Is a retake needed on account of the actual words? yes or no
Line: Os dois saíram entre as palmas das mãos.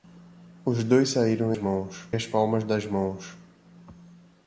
yes